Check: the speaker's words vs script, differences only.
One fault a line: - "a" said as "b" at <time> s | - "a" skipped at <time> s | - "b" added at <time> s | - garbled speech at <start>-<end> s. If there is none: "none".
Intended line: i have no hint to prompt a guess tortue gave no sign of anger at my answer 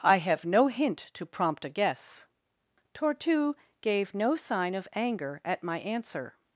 none